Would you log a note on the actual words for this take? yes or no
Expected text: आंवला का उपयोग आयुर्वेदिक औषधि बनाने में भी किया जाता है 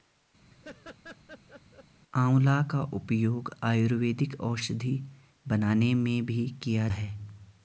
yes